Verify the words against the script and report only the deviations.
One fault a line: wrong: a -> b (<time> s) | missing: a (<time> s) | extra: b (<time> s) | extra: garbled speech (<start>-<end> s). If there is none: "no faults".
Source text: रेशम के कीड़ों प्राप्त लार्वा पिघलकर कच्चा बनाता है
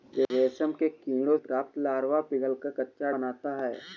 no faults